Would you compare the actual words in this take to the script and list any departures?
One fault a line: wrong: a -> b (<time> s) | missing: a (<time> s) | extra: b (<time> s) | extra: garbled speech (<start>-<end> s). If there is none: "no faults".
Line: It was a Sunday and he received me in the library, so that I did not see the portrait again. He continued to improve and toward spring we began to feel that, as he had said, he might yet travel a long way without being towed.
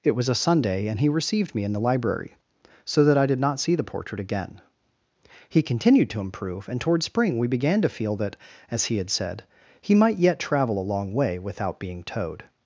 no faults